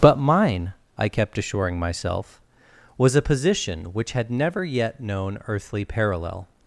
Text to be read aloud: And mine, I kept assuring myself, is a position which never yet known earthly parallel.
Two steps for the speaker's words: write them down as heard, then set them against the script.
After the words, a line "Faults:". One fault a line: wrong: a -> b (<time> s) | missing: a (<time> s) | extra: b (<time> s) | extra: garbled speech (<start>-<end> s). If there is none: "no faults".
But mine, I kept assuring myself, was a position which had never yet known earthly parallel.
Faults:
wrong: And -> But (0.0 s)
wrong: is -> was (3.0 s)
extra: had (4.1 s)